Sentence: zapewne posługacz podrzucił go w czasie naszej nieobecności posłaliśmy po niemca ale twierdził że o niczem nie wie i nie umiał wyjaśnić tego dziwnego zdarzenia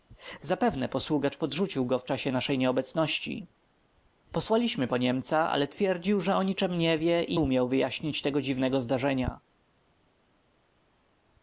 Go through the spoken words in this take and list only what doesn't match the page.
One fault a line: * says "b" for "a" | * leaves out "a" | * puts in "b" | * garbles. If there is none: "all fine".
* leaves out "nie"